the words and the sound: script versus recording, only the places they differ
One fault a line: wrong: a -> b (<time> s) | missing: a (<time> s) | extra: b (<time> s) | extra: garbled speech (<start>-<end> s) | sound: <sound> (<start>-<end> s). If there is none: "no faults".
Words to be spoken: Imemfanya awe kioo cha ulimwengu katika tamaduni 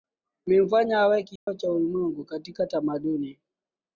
sound: dropout (1.4-1.5 s)